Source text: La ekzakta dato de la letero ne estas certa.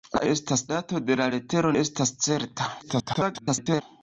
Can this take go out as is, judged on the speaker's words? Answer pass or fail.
fail